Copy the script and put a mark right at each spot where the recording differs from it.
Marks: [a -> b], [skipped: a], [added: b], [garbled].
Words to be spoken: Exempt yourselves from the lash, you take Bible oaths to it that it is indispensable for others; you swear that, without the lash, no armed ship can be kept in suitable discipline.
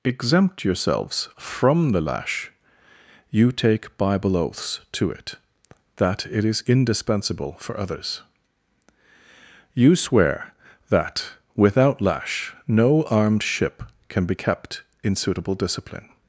Exempt yourselves from the lash, you take Bible oaths to it that it is indispensable for others; you swear that, without [skipped: the] lash, no armed ship can be kept in suitable discipline.